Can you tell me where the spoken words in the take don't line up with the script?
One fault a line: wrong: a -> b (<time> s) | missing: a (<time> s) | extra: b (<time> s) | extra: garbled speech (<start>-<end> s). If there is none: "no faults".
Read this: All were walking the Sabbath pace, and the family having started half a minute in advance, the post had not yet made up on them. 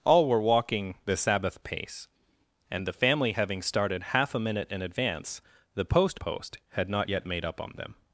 extra: post (6.2 s)